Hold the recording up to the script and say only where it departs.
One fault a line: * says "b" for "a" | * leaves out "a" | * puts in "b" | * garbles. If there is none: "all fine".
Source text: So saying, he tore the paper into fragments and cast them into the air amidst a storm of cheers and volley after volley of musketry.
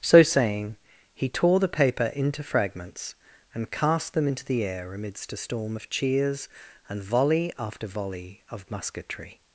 all fine